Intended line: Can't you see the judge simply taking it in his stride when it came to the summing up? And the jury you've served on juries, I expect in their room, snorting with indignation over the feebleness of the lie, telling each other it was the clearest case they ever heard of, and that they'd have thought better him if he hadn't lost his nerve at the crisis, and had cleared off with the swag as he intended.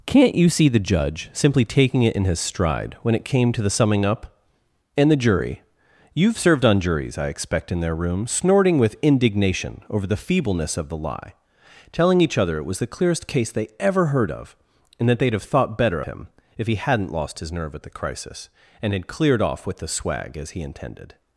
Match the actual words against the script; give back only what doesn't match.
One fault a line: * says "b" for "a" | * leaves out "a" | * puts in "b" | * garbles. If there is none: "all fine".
all fine